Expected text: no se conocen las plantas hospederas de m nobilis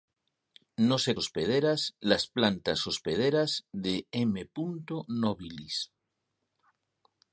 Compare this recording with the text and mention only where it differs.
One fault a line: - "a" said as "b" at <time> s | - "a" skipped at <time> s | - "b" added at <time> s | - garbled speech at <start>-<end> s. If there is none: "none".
- "conocen" said as "hospederas" at 1.2 s